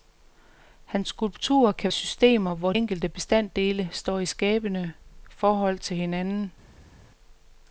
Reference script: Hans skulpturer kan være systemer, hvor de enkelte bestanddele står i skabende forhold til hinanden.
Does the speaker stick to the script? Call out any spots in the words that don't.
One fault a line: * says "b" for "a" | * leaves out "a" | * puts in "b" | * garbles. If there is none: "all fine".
* leaves out "være"
* leaves out "de"